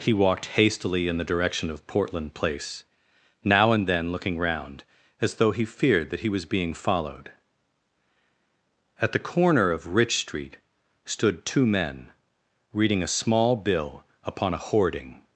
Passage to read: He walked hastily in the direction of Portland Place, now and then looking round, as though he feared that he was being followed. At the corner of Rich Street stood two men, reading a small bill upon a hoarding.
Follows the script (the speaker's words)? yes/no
yes